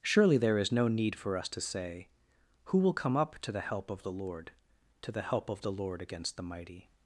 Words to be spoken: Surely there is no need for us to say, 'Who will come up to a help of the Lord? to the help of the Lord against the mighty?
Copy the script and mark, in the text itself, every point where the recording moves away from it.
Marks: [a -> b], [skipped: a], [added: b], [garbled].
Surely there is no need for us to say, 'Who will come up to [a -> the] help of the Lord? to the help of the Lord against the mighty?